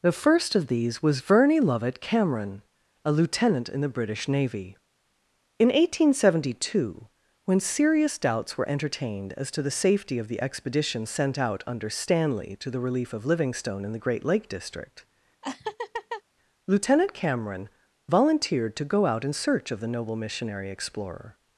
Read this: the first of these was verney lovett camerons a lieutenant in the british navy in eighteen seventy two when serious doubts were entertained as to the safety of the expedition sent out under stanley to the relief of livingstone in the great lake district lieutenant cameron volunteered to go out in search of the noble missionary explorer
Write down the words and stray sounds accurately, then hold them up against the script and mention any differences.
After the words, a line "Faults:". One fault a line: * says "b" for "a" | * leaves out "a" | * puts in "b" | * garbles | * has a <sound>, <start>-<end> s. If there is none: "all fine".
the first of these was verney lovett cameron a lieutenant in the british navy in eighteen seventy two when serious doubts were entertained as to the safety of the expedition sent out under stanley to the relief of livingstone in the great lake district lieutenant cameron volunteered to go out in search of the noble missionary explorer
Faults:
* says "cameron" for "camerons"
* has a laugh, 15.4-16.2 s